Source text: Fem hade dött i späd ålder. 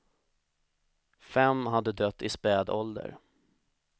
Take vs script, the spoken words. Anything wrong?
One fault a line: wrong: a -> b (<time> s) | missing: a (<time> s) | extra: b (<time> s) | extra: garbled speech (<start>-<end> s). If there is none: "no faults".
no faults